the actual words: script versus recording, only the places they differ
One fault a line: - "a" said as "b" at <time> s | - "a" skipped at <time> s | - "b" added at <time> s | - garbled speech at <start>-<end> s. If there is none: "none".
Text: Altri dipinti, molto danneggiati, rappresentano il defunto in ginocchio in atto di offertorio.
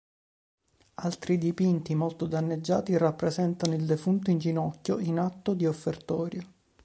none